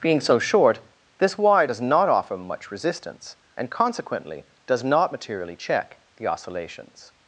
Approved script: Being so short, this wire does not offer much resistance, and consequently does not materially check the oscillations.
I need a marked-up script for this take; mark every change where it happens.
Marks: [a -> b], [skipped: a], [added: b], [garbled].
Being so short, this wire does not offer much resistance, and consequently does not materially check the oscillations.